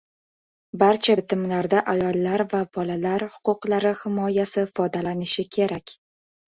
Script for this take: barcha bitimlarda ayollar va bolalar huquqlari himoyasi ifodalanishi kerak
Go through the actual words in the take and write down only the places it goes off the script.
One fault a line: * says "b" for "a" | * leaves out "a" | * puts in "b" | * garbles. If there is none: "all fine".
all fine